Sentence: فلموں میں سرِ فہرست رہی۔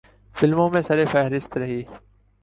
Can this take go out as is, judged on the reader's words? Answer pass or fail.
pass